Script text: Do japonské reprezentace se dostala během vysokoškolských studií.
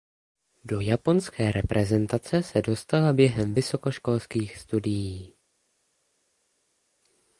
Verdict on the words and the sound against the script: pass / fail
pass